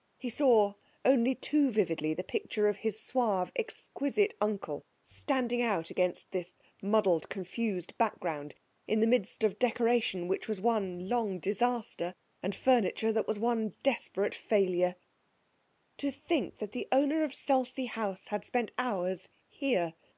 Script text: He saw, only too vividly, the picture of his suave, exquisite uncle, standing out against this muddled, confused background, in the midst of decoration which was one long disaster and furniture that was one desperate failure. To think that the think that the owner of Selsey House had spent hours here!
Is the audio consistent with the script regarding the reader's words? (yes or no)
no